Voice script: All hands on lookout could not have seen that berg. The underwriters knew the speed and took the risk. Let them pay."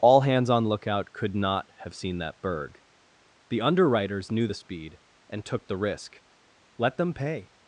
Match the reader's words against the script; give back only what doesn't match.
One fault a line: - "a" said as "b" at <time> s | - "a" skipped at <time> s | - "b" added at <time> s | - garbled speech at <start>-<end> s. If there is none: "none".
none